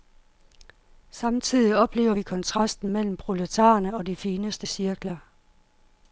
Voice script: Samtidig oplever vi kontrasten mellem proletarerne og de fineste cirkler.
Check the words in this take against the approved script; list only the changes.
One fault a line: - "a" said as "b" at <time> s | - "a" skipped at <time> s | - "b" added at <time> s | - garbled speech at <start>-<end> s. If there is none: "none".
none